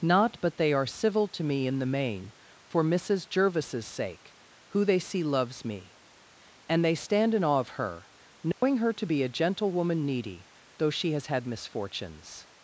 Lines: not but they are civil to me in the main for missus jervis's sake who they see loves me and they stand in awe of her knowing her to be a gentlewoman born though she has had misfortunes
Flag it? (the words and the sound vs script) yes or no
yes